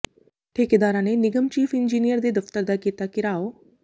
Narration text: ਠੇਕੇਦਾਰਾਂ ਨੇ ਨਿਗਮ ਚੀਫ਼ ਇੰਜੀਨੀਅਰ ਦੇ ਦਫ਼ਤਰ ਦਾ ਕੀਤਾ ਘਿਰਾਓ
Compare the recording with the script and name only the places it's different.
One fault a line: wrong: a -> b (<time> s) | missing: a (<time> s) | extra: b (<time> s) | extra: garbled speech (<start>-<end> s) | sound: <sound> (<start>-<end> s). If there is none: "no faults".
no faults